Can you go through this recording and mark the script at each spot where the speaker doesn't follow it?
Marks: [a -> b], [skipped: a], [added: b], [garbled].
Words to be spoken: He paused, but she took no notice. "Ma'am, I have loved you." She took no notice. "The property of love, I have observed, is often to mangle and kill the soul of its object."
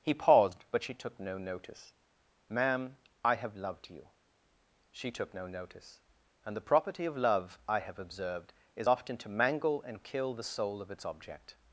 He paused, but she took no notice. "Ma'am, I have loved you." She took no notice. [added: And] "The property of love, I have observed, is often to mangle and kill the soul of its object."